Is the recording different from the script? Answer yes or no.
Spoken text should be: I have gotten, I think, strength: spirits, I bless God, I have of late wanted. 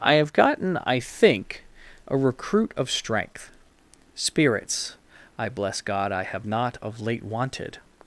yes